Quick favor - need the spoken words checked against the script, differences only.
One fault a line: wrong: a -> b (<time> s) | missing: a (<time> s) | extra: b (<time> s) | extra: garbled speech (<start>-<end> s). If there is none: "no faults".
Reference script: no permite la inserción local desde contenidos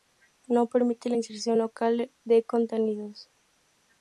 wrong: desde -> de (2.2 s)